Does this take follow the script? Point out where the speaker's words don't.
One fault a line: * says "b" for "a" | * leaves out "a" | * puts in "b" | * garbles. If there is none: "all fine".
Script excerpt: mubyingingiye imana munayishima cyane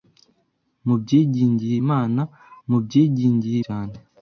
* says "mubyingingiye" for "munayishima"